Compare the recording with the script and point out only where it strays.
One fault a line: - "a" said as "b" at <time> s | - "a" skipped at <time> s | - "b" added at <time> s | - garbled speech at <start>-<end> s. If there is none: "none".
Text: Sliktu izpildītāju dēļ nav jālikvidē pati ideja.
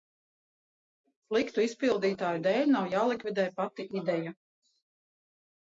none